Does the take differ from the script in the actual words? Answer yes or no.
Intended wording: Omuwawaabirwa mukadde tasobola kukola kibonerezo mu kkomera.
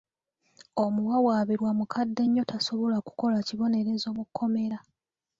yes